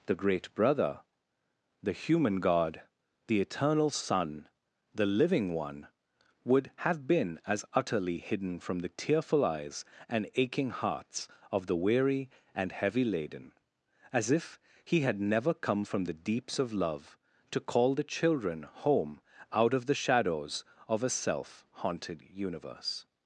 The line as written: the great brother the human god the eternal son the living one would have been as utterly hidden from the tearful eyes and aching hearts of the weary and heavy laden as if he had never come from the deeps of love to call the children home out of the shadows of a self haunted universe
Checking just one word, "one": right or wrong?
right